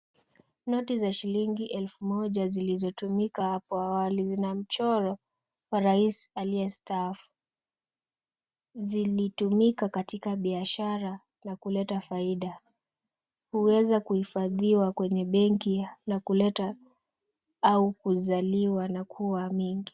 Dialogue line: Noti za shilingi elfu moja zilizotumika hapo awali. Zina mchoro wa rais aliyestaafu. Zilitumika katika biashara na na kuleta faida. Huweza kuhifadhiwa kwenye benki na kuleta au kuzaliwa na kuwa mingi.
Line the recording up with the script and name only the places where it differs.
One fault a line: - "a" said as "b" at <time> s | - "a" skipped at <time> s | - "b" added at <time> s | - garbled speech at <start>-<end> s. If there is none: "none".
- "na" skipped at 11.6 s